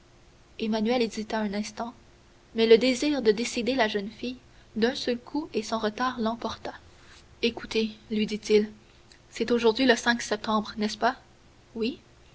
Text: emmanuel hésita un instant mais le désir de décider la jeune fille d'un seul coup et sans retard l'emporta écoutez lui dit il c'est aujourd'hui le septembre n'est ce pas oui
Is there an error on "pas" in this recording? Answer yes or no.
no